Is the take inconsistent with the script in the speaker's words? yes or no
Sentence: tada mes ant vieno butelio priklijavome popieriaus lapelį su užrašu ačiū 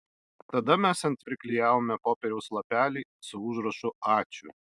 yes